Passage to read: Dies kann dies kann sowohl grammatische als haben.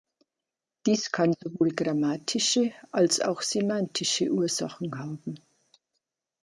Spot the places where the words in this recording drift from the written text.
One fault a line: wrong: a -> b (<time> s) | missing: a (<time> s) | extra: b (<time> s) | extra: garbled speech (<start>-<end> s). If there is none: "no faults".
missing: dies kann (1.3 s)
extra: auch semantische Ursachen (3.2 s)